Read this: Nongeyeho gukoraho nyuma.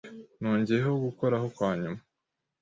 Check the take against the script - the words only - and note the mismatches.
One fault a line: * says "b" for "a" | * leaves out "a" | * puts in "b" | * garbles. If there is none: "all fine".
* puts in "kwa"